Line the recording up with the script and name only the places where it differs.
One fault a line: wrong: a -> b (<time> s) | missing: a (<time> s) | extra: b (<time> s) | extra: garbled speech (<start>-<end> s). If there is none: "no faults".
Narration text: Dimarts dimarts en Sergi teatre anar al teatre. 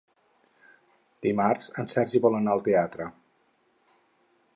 missing: dimarts (1.7 s)
wrong: teatre -> vol (2.2 s)